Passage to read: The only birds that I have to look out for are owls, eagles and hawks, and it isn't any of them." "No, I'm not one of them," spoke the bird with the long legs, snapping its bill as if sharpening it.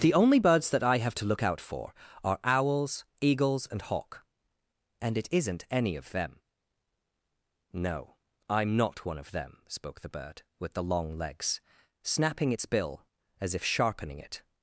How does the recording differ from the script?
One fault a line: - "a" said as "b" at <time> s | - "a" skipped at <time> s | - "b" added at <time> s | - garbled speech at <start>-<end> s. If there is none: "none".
- "hawks" said as "hawk" at 3.8 s